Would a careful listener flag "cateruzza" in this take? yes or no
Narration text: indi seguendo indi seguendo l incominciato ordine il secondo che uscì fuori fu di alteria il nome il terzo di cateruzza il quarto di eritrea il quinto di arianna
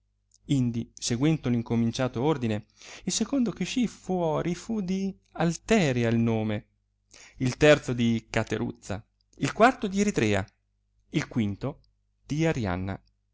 no